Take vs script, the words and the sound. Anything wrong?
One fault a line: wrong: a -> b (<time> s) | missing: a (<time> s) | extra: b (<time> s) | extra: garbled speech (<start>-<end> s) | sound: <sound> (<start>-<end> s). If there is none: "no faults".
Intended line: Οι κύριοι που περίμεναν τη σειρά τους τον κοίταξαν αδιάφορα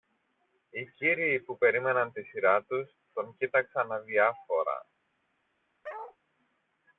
sound: bark (5.8-6.2 s)